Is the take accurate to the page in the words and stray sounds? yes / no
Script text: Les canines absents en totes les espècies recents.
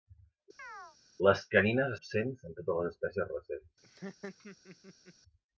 no